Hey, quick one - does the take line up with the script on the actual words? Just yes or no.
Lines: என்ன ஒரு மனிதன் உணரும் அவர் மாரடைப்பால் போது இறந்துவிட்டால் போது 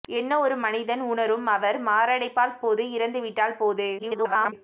no